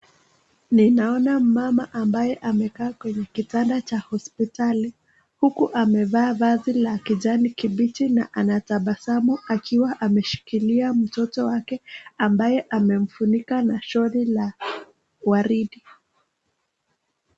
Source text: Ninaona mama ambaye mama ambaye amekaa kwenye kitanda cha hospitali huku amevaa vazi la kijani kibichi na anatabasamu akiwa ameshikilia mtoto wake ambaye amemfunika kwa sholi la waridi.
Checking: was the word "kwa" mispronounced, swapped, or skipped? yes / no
yes